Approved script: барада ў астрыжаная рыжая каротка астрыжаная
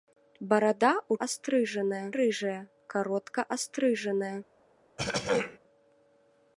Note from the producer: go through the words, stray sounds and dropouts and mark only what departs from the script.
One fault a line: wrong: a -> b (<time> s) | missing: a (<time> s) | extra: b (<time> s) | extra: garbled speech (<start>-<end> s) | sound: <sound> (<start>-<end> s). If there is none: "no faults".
sound: throat clearing (5.0-5.6 s)